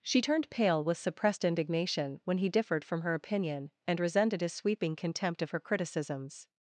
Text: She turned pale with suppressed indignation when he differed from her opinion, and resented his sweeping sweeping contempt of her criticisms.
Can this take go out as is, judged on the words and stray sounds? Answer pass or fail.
fail